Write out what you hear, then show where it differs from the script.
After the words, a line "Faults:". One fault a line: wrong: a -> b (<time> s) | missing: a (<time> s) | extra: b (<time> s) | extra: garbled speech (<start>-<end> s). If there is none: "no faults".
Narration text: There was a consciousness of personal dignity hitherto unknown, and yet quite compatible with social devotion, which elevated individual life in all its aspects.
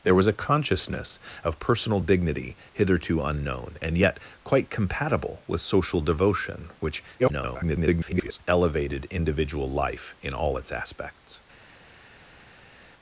There was a consciousness of personal dignity hitherto unknown, and yet quite compatible with social devotion, which [garbled] elevated individual life in all its aspects.
Faults:
extra: garbled speech (7.2-8.4 s)